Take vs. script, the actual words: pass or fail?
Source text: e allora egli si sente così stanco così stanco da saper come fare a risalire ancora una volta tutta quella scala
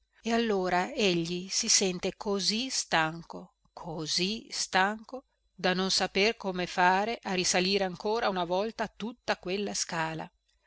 fail